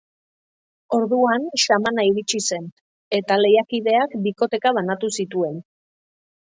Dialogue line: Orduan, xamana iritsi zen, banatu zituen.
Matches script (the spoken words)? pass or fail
fail